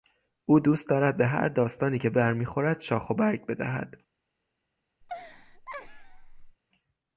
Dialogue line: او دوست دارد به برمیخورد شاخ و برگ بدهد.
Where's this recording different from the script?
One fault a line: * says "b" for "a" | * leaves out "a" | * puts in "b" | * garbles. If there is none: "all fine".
* puts in "هر داستانی که"